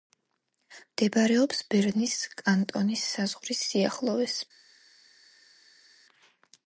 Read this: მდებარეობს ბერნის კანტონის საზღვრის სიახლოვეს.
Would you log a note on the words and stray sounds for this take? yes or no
no